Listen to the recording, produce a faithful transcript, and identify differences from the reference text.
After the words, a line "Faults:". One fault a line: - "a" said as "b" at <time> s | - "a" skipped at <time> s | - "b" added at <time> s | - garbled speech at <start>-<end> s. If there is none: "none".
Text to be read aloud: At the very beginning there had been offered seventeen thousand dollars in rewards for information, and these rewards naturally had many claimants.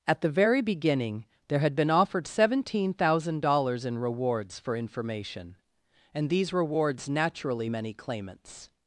At the very beginning there had been offered seventeen thousand dollars in rewards for information, and these rewards naturally many claimants.
Faults:
- "had" skipped at 7.7 s